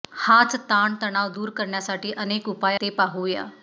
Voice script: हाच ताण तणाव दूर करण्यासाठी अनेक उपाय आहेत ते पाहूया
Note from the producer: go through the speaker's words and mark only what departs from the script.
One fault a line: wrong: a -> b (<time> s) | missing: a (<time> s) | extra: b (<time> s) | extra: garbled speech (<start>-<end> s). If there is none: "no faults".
missing: आहेत (2.8 s)